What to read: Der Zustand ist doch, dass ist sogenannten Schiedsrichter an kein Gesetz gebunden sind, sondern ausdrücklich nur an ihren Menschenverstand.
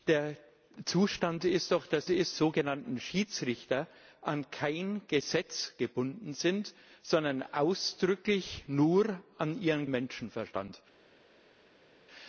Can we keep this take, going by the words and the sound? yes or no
yes